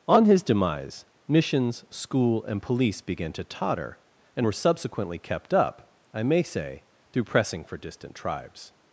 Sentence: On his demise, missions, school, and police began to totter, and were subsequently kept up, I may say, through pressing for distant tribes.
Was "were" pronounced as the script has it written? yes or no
yes